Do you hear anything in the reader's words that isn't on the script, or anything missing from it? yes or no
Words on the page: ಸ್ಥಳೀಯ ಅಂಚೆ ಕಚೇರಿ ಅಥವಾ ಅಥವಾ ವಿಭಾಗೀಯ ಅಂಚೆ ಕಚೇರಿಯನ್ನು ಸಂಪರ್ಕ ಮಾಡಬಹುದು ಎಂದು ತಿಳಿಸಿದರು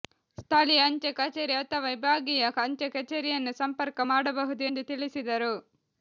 yes